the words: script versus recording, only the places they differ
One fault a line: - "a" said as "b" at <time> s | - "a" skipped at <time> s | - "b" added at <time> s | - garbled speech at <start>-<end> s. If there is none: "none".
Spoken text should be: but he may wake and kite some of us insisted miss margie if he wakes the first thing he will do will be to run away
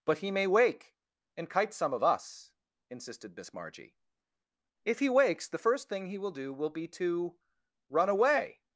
none